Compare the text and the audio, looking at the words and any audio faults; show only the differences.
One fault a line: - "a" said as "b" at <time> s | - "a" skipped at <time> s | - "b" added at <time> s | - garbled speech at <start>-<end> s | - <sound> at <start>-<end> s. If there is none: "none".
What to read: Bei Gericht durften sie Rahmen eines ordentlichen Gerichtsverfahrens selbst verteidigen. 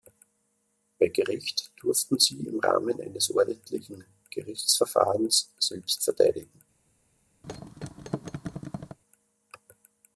- "im" added at 2.5 s
- thud at 7.4-9.0 s